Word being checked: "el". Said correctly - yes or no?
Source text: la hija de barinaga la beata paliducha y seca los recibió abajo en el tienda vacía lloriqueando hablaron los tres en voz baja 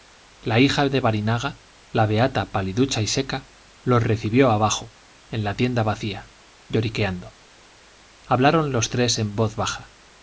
no